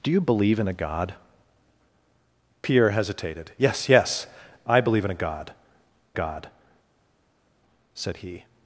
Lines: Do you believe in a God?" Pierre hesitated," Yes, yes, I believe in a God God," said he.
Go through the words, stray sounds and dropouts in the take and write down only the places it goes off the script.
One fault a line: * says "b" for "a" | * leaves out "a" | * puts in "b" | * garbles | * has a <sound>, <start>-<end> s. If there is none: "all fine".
all fine